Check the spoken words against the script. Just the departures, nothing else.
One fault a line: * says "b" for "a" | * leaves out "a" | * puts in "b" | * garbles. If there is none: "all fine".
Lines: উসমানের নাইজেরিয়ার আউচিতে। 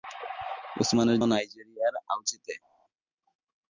all fine